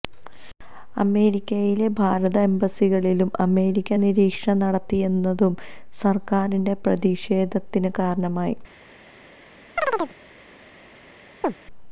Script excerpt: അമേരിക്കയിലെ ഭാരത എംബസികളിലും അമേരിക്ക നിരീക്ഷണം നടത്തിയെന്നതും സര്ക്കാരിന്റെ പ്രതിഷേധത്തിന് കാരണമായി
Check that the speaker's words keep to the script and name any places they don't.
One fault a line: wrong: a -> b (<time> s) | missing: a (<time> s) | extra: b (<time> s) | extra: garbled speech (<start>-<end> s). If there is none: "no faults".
no faults